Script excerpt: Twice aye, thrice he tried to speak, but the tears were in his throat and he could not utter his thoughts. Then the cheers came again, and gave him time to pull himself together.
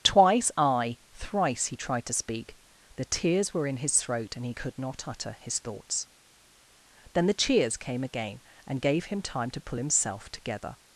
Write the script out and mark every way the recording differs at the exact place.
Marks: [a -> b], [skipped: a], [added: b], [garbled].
Twice aye, thrice he tried to speak, [skipped: but] the tears were in his throat and he could not utter his thoughts. Then the cheers came again, and gave him time to pull himself together.